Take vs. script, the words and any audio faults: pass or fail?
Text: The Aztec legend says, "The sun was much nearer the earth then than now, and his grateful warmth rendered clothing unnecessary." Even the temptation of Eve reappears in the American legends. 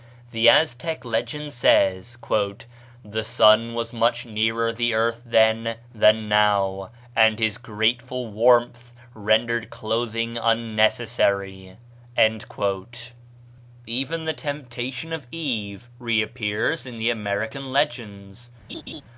fail